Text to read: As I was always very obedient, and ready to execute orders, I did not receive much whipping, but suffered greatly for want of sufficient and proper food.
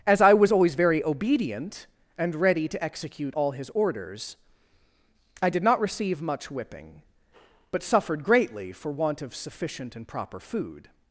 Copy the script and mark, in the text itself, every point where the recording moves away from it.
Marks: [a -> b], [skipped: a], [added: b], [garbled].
As I was always very obedient, and ready to execute [added: all his] orders, I did not receive much whipping, but suffered greatly for want of sufficient and proper food.